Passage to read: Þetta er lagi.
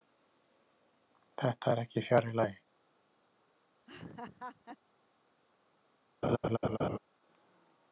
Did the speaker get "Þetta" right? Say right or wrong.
right